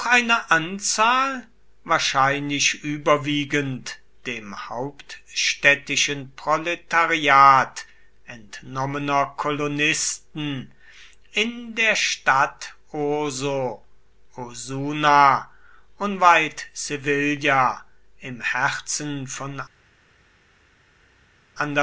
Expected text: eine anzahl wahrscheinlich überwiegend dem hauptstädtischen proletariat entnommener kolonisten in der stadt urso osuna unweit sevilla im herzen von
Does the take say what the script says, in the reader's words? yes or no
yes